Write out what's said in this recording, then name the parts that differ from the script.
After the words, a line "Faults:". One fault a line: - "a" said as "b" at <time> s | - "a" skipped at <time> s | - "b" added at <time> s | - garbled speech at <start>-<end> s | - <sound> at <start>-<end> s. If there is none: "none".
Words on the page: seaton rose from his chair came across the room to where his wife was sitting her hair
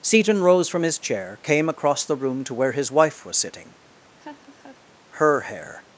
seaton rose from his chair came across the room to where his wife was sitting her hair
Faults:
- laugh at 4.2-4.8 s